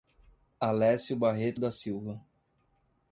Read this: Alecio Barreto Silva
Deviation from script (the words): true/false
true